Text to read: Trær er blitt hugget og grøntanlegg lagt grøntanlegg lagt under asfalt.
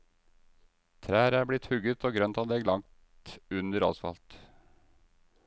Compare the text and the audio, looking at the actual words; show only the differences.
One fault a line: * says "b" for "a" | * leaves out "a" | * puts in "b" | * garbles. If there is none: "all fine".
* leaves out "grøntanlegg lagt"